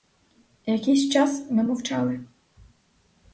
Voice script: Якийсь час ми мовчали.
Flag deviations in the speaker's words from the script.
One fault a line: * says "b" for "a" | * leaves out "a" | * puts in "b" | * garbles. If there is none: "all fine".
all fine